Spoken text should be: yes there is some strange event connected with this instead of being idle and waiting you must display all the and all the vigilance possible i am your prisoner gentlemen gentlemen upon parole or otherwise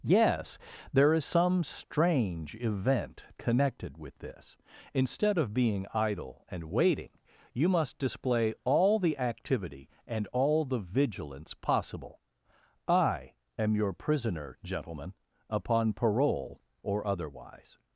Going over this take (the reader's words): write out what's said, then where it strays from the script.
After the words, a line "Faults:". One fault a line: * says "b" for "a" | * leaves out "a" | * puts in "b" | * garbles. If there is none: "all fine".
yes there is some strange event connected with this instead of being idle and waiting you must display all the activity and all the vigilance possible i am your prisoner gentlemen upon parole or otherwise
Faults:
* puts in "activity"
* leaves out "gentlemen"